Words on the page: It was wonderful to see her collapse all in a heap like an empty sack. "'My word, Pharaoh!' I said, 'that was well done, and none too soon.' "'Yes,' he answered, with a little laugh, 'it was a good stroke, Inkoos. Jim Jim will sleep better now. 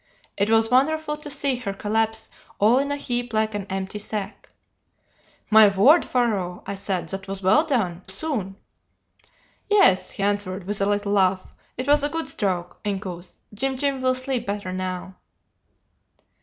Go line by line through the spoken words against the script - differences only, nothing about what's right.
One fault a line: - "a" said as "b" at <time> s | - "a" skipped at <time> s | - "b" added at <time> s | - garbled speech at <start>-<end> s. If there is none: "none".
- "and none too" skipped at 8.0 s